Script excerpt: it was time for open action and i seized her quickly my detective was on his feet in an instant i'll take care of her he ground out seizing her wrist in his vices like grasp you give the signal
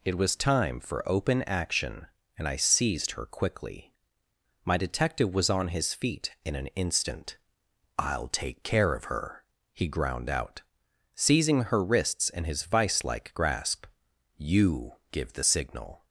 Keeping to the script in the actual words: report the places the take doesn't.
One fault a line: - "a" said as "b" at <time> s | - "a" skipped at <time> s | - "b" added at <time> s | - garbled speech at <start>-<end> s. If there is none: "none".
- "wrist" said as "wrists" at 11.8 s
- "vices" said as "vice" at 12.6 s